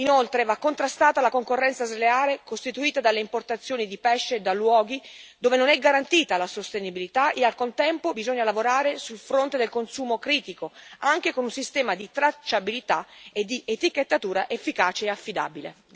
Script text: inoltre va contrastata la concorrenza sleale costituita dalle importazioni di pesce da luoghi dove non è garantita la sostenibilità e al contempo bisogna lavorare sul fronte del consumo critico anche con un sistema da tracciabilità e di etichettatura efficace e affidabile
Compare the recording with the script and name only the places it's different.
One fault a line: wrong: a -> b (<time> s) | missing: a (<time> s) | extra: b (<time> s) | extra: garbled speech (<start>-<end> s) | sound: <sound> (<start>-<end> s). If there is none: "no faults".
wrong: da -> di (12.0 s)